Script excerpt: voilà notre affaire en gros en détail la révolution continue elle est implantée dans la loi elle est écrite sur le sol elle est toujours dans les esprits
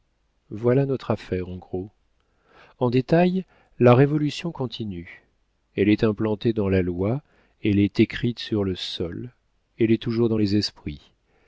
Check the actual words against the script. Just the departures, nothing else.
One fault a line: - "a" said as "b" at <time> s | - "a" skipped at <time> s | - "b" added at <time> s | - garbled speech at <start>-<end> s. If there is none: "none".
none